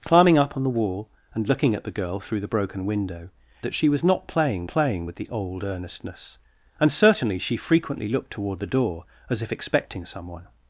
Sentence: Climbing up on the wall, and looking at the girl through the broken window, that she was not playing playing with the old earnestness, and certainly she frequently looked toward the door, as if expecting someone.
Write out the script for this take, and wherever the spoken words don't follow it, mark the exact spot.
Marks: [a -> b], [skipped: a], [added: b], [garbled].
Climbing up on the wall, and looking at the girl through the broken window, that she was not playing playing with the old earnestness, and certainly she frequently looked toward the door, as if expecting someone.